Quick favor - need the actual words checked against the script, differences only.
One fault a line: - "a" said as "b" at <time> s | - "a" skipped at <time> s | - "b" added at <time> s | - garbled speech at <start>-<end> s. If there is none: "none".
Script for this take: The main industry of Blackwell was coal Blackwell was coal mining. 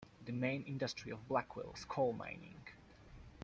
- "Blackwell was coal" skipped at 2.1 s